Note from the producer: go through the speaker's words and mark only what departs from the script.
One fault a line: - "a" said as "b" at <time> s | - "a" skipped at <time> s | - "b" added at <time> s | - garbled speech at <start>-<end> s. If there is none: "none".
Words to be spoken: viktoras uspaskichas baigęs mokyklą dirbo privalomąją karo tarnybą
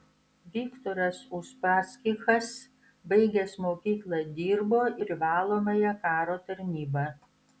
none